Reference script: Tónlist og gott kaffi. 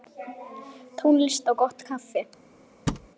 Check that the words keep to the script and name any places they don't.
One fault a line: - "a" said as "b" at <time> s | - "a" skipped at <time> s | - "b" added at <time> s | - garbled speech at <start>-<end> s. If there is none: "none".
none